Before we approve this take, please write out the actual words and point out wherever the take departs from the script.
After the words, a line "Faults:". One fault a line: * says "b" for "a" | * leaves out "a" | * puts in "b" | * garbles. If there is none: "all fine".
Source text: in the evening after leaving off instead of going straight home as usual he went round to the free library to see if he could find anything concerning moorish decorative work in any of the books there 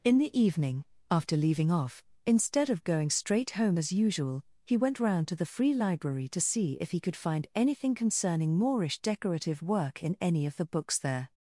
in the evening after leaving off instead of going straight home as usual he went round to the free library to see if he could find anything concerning moorish decorative work in any of the books there
Faults:
all fine